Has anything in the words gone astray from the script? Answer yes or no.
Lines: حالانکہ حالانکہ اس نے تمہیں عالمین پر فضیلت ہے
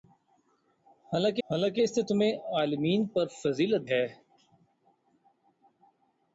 no